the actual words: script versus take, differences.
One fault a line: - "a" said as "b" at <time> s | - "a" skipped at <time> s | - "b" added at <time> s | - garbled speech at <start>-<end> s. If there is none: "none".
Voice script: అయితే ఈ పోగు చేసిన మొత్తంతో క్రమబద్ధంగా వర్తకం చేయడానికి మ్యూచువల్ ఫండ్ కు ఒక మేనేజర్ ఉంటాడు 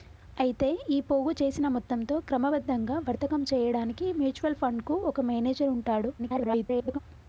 - garbled speech at 6.2-7.0 s